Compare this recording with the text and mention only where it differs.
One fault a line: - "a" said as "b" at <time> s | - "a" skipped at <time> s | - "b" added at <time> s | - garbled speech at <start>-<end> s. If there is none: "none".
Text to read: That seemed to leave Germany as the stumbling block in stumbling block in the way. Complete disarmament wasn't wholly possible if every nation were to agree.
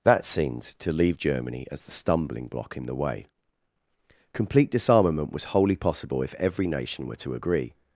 - "stumbling block in" skipped at 2.9 s
- "wasn't" said as "was" at 5.3 s